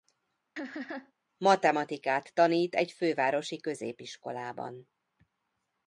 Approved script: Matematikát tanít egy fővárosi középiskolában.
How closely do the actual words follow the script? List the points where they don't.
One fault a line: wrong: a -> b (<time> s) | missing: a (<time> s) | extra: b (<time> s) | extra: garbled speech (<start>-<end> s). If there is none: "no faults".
no faults